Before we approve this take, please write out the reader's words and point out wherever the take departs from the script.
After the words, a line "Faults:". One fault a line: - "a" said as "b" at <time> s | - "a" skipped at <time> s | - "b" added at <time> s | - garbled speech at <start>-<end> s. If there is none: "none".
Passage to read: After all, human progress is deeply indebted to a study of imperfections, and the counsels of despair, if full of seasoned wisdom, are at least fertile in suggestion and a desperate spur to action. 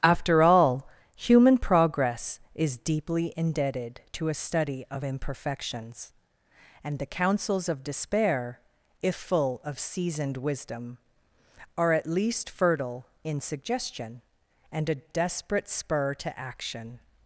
After all, human progress is deeply indebted to a study of imperfections, and the counsels of despair, if full of seasoned wisdom, are at least fertile in suggestion and a desperate spur to action.
Faults:
none